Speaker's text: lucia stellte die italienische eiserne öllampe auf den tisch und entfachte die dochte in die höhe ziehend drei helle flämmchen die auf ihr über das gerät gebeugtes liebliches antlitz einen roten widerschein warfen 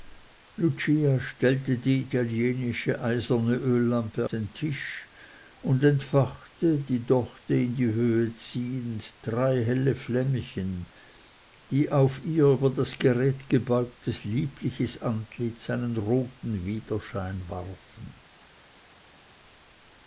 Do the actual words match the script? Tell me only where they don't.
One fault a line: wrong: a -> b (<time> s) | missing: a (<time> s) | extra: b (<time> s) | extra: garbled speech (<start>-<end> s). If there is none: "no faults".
missing: auf (4.3 s)